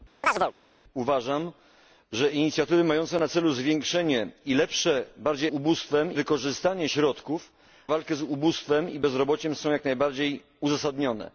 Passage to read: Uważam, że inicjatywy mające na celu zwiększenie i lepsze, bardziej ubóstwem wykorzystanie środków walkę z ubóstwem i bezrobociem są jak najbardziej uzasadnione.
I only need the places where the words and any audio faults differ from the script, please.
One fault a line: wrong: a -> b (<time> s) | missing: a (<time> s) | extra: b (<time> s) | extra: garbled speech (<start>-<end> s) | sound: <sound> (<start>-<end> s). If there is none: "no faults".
sound: chirp (0.2-0.5 s)